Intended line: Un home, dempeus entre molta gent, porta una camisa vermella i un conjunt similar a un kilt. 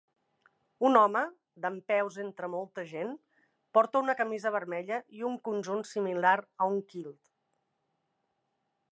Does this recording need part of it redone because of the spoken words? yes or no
no